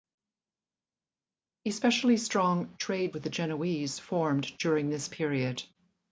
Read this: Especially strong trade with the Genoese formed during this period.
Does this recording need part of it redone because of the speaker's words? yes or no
no